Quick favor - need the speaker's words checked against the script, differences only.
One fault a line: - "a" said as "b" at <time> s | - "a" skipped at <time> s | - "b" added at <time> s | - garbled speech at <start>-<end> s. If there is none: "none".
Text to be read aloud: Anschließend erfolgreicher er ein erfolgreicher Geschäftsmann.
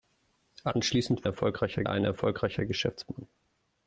none